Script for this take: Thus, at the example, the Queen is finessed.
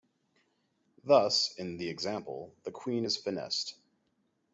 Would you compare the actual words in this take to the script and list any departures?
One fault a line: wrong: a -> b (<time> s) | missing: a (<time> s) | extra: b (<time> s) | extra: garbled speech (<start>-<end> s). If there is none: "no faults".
wrong: at -> in (1.6 s)